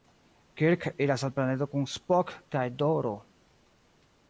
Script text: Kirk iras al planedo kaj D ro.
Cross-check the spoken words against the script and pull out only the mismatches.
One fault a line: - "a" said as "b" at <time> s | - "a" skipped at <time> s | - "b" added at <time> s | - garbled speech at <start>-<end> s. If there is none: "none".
- "kun Spock" added at 1.7 s